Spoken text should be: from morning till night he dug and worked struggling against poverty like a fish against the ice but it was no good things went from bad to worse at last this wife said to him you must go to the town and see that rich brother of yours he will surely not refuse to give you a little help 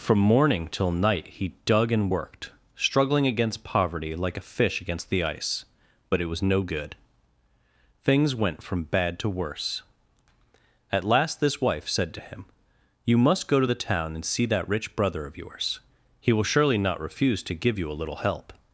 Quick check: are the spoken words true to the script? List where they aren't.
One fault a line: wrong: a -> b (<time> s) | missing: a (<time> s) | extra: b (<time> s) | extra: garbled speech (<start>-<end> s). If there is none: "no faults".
no faults